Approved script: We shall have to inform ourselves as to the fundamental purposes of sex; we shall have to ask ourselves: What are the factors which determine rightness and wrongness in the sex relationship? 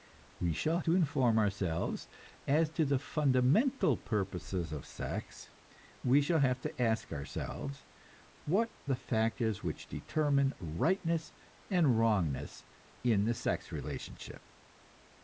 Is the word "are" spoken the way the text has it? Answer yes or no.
no